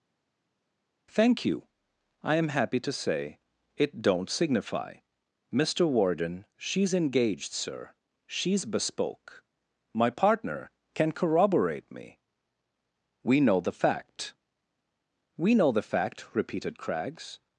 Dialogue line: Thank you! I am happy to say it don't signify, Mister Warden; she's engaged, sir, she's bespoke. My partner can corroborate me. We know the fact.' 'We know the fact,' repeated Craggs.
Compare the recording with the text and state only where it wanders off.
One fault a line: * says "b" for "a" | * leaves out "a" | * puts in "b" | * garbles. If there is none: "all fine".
all fine